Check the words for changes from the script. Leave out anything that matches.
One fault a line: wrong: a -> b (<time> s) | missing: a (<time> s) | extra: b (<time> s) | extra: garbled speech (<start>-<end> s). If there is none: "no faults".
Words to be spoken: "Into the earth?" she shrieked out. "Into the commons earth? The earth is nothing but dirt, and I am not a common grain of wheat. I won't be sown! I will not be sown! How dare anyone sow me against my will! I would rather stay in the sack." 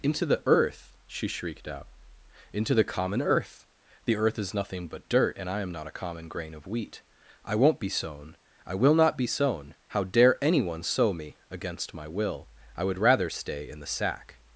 wrong: commons -> common (2.8 s)